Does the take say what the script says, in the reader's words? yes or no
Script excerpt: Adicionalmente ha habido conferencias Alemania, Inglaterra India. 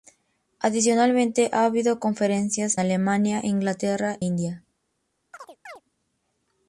yes